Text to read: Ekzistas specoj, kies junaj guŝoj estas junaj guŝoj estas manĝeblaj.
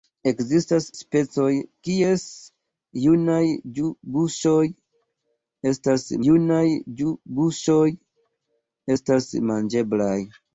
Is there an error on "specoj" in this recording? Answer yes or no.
no